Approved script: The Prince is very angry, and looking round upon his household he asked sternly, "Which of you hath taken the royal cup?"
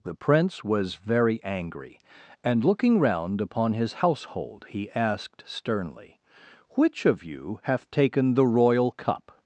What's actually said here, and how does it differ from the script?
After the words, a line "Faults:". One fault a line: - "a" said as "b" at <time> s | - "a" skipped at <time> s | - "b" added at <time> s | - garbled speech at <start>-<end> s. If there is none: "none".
The Prince was very angry, and looking round upon his household he asked sternly, "Which of you hath taken the royal cup?"
Faults:
- "is" said as "was" at 0.6 s